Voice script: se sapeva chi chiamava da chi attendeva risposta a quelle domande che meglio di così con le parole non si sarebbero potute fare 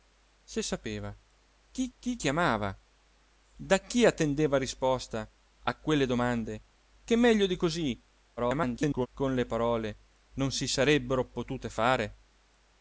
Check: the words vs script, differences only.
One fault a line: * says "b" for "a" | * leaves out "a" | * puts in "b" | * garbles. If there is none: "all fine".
* puts in "chi"
* garbles